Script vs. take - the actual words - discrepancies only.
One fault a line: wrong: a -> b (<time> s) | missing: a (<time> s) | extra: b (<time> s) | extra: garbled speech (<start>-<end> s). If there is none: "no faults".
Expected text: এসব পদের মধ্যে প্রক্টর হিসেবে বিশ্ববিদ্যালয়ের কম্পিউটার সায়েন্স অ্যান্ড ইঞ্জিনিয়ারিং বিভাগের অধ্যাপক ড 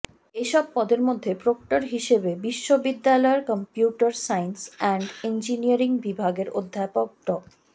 no faults